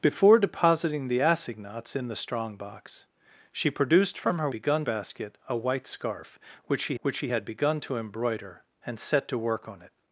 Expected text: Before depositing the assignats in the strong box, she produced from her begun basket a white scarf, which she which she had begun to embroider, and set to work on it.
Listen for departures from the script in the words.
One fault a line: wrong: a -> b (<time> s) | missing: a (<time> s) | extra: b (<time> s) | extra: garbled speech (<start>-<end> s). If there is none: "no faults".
no faults